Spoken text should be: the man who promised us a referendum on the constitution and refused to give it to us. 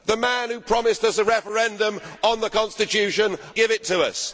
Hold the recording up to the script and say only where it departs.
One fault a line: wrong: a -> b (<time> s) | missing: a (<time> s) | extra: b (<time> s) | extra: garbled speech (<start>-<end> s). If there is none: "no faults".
missing: and refused to (3.4 s)